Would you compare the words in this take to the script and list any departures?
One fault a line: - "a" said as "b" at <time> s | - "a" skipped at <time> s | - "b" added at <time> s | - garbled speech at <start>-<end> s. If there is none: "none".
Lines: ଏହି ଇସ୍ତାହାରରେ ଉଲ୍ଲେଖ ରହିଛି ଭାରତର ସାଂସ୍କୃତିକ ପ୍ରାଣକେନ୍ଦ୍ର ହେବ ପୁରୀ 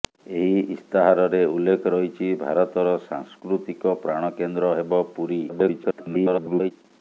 - garbled speech at 5.5-6.7 s